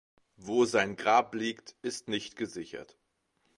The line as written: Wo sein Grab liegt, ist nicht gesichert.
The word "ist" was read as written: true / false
true